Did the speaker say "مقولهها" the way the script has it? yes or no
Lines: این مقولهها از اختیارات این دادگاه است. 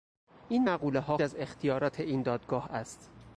yes